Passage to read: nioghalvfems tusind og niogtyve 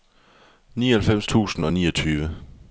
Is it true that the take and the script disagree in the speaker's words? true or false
false